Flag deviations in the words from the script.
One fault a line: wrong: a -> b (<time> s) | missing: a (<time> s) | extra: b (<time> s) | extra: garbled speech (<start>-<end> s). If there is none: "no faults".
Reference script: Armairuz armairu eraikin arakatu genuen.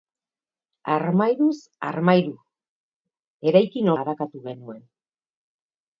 no faults